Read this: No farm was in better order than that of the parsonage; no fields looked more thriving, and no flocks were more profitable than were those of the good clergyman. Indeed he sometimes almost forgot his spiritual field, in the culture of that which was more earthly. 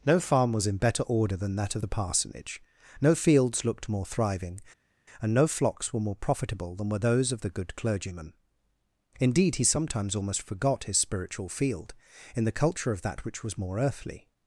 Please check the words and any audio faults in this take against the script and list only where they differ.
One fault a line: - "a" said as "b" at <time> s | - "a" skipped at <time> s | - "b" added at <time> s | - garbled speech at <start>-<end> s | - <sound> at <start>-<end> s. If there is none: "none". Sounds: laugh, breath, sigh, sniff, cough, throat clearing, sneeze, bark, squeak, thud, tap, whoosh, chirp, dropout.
none